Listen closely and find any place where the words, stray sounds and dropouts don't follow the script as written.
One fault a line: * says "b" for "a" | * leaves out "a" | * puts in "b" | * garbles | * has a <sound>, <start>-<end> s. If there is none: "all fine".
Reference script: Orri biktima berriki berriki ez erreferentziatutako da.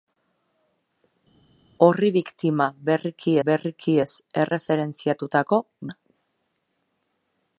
all fine